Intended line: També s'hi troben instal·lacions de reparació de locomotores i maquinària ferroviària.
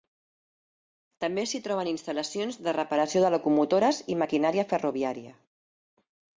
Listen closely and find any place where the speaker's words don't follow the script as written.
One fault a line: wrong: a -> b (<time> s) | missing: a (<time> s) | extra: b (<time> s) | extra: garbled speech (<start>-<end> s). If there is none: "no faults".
no faults